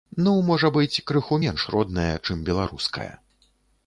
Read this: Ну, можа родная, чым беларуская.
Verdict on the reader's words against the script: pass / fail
fail